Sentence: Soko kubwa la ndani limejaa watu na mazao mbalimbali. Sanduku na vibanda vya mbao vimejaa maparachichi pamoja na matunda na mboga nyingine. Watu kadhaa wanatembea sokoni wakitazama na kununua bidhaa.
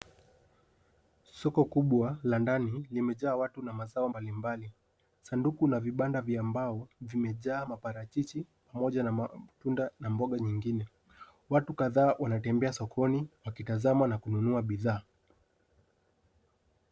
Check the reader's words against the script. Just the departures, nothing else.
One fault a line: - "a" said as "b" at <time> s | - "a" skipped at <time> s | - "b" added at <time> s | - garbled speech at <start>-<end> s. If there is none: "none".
none